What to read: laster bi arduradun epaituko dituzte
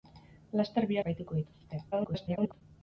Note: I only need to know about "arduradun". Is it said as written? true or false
false